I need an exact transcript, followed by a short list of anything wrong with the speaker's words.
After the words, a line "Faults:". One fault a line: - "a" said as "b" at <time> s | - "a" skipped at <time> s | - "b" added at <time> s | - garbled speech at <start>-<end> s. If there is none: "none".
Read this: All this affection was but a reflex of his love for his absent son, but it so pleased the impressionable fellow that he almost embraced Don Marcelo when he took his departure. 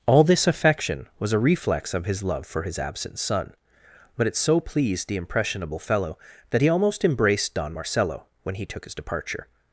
All this affection was a reflex of his love for his absent son, but it so pleased the impressionable fellow that he almost embraced Don Marcelo when he took his departure.
Faults:
- "but" skipped at 1.3 s